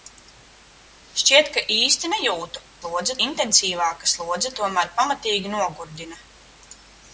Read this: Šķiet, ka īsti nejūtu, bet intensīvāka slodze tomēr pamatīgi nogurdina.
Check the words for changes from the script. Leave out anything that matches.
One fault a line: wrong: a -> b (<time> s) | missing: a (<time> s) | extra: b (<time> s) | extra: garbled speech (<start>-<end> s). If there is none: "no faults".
wrong: bet -> slodze (2.8 s)